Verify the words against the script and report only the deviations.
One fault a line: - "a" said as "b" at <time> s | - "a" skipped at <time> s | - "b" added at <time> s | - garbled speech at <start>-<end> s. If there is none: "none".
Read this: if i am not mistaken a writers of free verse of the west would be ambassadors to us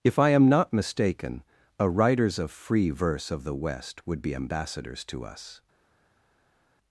none